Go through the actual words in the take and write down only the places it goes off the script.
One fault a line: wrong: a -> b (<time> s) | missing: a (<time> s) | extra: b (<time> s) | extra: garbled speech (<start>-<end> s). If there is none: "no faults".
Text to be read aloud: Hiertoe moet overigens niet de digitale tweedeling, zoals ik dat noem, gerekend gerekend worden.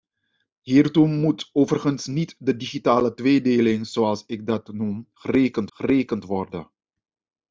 no faults